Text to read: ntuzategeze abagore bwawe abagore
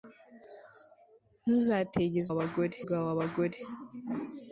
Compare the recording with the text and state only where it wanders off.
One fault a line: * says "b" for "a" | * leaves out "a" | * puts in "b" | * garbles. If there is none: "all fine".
all fine